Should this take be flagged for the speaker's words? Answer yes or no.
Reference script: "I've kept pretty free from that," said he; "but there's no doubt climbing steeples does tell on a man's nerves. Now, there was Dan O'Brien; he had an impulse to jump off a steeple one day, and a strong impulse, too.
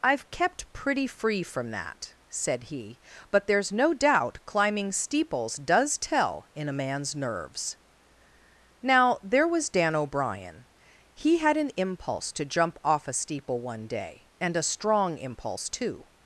yes